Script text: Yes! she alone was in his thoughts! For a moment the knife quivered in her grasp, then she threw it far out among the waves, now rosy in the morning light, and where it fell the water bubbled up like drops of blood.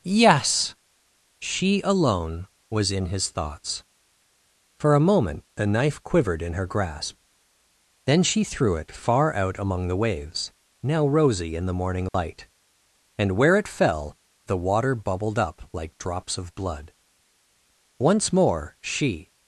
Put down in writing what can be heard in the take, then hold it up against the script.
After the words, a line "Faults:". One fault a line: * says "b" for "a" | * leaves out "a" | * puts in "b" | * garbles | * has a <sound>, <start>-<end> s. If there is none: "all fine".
Yes! she alone was in his thoughts! For a moment the knife quivered in her grasp, then she threw it far out among the waves, now rosy in the morning light, and where it fell the water bubbled up like drops of blood. Once more she
Faults:
* has a dropout, 12.1-12.1 s
* puts in "Once more she"